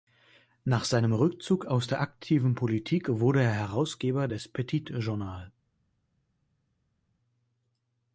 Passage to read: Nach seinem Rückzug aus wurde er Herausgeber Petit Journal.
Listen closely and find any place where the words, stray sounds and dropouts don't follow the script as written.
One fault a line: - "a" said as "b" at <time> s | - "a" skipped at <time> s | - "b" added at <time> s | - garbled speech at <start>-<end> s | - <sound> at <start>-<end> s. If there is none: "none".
- "der aktiven Politik" added at 1.9 s
- "des" added at 4.3 s